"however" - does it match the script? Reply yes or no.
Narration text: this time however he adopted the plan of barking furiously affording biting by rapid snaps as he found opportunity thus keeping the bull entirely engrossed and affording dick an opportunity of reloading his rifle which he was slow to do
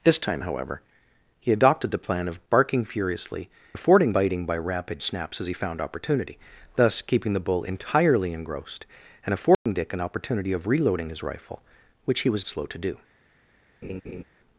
yes